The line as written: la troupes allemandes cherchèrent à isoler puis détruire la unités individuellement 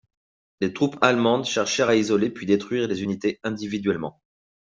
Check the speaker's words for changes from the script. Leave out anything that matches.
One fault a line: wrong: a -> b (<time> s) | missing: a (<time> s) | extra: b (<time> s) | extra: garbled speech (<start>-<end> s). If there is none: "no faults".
wrong: la -> les (0.6 s)
wrong: la -> les (2.9 s)